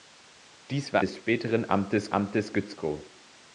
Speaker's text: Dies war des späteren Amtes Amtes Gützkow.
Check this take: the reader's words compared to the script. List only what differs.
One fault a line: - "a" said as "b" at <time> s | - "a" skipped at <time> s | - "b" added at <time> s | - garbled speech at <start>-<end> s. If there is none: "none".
none